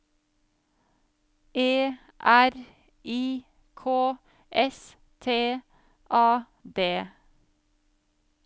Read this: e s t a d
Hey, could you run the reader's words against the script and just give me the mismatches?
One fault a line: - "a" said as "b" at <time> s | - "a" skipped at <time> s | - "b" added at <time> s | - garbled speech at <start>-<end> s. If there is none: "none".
- "r i k" added at 2.2 s